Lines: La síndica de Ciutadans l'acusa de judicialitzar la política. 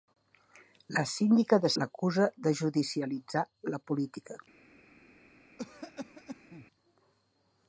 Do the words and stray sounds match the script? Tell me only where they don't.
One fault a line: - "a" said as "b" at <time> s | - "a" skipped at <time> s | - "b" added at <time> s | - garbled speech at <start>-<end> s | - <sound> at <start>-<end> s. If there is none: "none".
- "Ciutadans" skipped at 1.7 s
- cough at 5.6-6.7 s